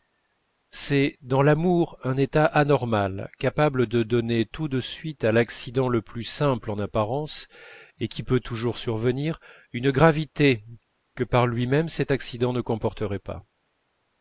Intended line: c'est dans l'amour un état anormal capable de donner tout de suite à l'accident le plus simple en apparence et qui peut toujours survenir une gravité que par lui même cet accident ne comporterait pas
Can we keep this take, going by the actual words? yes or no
yes